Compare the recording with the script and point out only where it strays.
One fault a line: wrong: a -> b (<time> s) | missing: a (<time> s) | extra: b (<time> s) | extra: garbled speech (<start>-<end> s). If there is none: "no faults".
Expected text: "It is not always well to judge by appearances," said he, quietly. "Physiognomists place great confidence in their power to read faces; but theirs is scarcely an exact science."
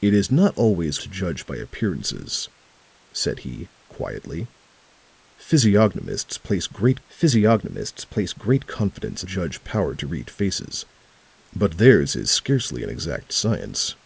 missing: well (1.0 s)
extra: physiognomists place great (7.1 s)
wrong: their -> judge (9.2 s)